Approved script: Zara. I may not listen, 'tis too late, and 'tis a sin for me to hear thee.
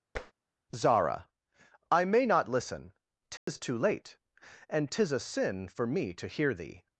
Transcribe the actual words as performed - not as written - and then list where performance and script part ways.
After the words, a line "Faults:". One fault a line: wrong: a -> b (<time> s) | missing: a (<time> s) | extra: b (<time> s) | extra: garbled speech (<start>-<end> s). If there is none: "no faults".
Zara. I may not listen, 'tis too late, and 'tis a sin for me to hear thee.
Faults:
no faults